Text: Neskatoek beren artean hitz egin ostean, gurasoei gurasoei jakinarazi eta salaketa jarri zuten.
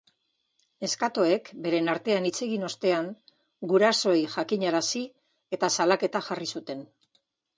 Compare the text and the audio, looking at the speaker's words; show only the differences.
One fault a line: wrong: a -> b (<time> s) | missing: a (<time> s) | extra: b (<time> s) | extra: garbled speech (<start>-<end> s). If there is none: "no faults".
missing: gurasoei (4.2 s)